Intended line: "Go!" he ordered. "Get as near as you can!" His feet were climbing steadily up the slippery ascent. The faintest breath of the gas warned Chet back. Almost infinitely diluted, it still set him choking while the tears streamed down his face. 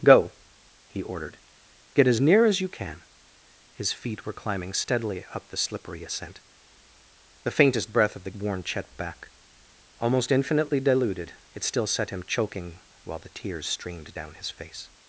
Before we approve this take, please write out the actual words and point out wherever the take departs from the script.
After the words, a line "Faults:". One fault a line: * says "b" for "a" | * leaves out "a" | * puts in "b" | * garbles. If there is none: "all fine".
"Go!" he ordered. "Get as near as you can!" His feet were climbing steadily up the slippery ascent. The faintest breath of the warned Chet back. Almost infinitely diluted, it still set him choking while the tears streamed down his face.
Faults:
* leaves out "gas"